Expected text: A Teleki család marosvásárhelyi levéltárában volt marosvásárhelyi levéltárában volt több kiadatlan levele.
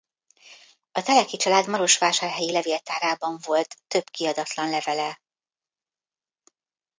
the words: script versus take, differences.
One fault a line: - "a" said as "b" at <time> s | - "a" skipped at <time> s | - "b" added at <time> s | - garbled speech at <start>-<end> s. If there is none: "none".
- "marosvásárhelyi levéltárában volt" skipped at 3.8 s